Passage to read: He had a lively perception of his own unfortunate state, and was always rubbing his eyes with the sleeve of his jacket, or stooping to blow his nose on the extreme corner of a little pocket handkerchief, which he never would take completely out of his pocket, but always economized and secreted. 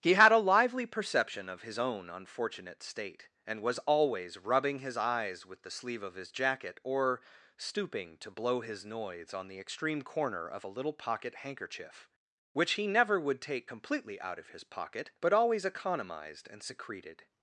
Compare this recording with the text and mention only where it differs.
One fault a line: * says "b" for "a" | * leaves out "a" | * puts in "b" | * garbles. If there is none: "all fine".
* says "noise" for "nose"